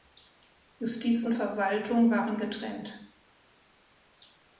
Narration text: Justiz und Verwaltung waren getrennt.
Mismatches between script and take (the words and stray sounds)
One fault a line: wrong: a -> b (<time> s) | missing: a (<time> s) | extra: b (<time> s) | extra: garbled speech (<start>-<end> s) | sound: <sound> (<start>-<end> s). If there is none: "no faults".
no faults